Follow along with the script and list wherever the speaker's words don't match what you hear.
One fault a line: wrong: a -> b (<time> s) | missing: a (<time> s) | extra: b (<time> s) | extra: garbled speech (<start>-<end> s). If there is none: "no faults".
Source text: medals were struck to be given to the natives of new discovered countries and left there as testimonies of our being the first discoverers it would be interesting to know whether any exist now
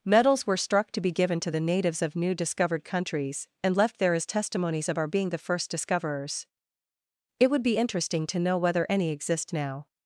no faults